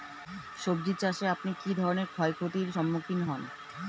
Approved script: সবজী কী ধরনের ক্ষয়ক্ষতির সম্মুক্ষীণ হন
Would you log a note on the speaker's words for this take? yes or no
yes